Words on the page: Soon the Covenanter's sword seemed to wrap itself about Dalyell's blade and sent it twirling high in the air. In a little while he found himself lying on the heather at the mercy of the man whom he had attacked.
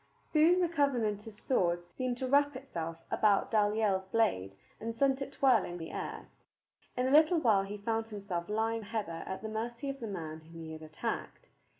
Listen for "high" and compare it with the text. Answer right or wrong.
wrong